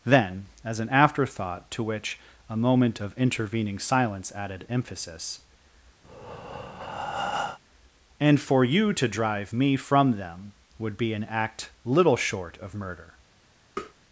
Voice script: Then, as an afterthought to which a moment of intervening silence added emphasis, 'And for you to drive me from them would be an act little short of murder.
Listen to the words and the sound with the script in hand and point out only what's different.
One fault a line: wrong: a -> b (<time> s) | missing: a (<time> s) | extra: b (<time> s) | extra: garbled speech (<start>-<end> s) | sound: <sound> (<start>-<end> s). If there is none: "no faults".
sound: breath (6.0-7.6 s)
sound: tap (13.8-13.9 s)